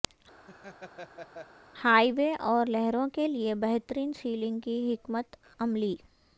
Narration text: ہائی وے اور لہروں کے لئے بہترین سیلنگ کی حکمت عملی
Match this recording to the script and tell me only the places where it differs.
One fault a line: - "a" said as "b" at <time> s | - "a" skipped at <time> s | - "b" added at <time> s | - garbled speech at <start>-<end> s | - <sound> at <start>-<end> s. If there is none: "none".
- laugh at 0.5-1.5 s